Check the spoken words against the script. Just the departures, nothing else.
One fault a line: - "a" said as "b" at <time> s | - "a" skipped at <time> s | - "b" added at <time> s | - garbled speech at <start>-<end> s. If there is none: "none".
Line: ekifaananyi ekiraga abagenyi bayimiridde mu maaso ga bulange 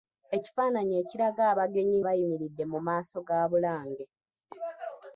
none